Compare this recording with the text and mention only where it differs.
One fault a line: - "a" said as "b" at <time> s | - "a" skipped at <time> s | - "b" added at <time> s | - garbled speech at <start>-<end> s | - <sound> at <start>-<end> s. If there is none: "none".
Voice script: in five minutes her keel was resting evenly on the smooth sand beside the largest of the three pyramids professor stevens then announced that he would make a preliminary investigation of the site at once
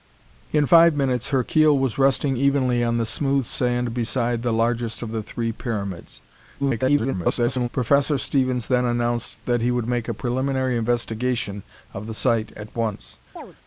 - garbled speech at 6.6-7.7 s
- chirp at 13.4-13.6 s